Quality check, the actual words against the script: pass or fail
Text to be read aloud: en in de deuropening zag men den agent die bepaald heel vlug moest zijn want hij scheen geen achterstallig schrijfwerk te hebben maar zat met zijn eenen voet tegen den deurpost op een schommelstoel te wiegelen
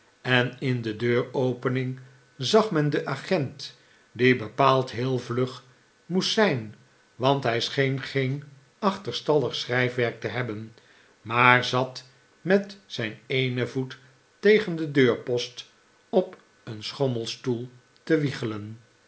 pass